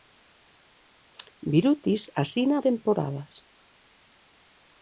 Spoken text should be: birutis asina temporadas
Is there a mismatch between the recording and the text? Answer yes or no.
no